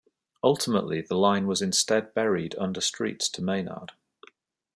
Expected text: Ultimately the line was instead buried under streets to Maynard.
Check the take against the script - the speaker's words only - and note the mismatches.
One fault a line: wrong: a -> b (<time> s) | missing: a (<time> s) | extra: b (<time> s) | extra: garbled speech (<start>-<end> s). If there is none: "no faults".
no faults